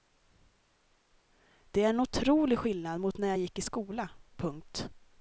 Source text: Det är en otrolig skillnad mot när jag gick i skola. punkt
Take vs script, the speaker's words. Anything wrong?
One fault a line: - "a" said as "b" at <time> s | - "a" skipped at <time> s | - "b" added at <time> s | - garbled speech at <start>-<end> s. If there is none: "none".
none